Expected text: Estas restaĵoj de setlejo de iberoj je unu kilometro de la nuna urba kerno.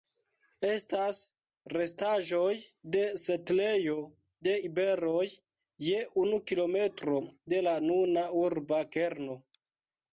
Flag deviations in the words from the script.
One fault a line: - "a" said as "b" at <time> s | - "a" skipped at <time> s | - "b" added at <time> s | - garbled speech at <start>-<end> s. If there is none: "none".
none